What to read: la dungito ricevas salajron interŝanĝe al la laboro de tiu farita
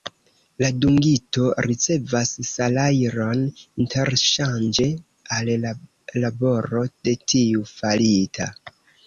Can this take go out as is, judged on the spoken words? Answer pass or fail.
pass